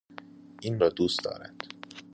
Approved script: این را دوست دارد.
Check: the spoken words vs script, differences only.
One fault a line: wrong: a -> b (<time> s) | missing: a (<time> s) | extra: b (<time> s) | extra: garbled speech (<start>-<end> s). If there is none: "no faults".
no faults